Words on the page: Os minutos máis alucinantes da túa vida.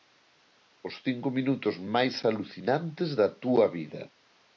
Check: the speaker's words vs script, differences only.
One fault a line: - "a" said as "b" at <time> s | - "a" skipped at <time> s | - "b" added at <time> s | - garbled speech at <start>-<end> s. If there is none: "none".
- "cinco" added at 1.1 s